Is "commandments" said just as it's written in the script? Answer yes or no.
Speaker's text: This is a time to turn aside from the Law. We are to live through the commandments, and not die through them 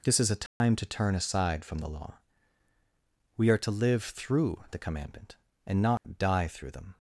no